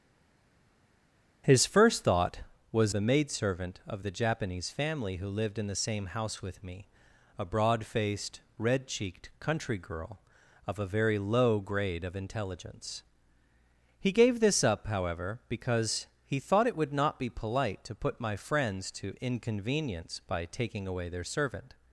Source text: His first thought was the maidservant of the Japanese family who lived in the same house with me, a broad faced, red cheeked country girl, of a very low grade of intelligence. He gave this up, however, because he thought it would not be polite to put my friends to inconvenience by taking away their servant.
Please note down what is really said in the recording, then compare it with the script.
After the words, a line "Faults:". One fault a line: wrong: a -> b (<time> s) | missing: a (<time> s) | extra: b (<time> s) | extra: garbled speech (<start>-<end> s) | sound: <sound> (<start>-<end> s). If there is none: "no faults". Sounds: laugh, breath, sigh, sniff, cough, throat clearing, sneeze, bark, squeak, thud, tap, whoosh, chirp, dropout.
His first thought was the maidservant of the Japanese family who lived in the same house with me, a broad faced, red cheeked country girl, of a very low grade of intelligence. He gave this up, however, because he thought it would not be polite to put my friends to inconvenience by taking away their servant.
Faults:
no faults